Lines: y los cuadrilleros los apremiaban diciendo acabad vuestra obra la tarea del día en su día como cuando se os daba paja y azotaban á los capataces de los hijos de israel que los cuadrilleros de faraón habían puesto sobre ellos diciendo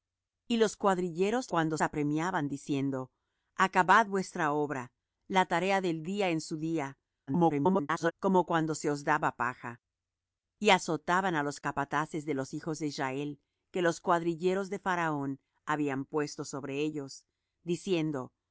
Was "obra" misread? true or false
false